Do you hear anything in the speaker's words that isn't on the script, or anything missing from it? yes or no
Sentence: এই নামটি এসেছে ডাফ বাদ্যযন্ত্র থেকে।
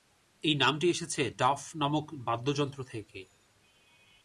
yes